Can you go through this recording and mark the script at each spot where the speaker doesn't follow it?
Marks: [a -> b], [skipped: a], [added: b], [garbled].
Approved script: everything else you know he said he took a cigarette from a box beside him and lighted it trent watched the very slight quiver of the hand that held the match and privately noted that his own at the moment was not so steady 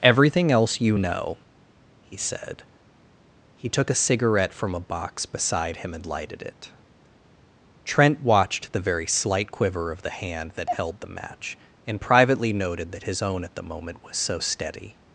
everything else you know he said he took a cigarette from a box beside him and lighted it trent watched the very slight quiver of the hand that held the match and privately noted that his own at the moment was [skipped: not] so steady